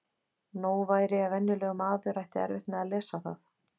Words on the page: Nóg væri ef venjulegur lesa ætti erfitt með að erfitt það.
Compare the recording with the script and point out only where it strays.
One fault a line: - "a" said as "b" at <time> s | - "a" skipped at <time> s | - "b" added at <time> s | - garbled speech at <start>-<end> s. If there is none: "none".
- "lesa" said as "maður" at 1.8 s
- "erfitt" said as "lesa" at 3.0 s